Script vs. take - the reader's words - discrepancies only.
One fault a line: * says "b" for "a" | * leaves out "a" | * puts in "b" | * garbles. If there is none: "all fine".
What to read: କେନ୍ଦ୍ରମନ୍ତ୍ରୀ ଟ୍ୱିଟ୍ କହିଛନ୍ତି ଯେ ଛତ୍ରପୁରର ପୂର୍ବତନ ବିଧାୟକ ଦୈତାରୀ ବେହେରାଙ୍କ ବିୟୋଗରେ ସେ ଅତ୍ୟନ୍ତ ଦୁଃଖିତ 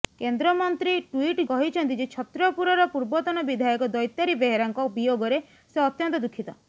all fine